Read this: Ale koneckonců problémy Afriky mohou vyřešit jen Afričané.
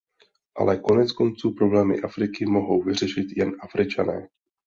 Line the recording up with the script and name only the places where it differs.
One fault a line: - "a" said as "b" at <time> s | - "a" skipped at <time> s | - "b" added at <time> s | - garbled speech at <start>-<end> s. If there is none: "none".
none